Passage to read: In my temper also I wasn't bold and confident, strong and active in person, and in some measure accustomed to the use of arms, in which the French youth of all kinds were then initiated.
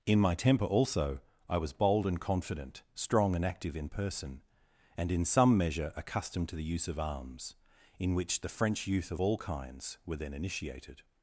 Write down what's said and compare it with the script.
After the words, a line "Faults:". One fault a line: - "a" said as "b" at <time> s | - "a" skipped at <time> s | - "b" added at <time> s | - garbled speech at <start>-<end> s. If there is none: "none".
In my temper also I was bold and confident, strong and active in person, and in some measure accustomed to the use of arms, in which the French youth of all kinds were then initiated.
Faults:
- "wasn't" said as "was" at 1.6 s